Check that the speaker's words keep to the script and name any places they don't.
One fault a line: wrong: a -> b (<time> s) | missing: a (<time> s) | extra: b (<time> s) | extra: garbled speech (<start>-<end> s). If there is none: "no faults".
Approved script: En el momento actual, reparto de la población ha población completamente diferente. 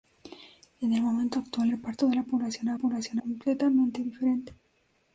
no faults